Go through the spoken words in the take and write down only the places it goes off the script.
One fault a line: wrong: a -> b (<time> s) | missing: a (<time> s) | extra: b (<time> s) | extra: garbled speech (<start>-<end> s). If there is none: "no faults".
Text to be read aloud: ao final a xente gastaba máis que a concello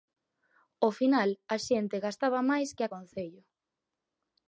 no faults